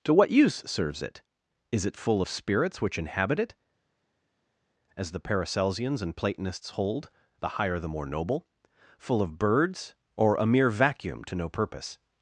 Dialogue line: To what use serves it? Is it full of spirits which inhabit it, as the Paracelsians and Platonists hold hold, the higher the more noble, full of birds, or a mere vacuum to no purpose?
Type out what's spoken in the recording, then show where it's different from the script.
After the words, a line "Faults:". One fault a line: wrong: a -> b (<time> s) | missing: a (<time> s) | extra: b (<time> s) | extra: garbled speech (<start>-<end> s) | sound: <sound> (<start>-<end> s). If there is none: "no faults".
To what use serves it? Is it full of spirits which inhabit it, as the Paracelsians and Platonists hold, the higher the more noble, full of birds, or a mere vacuum to no purpose?
Faults:
missing: hold (7.1 s)